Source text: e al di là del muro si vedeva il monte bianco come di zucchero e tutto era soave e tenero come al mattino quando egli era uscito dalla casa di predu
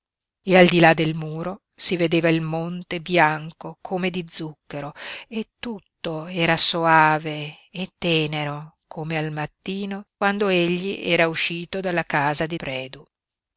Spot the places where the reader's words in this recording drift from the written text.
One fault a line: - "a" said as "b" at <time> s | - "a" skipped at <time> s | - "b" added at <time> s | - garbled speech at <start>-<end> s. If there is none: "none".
none